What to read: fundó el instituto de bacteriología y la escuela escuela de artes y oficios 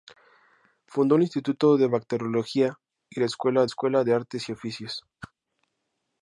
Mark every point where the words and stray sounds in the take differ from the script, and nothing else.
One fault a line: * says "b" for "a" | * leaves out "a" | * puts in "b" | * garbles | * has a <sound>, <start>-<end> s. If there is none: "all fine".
* has a whoosh, 5.2-5.3 s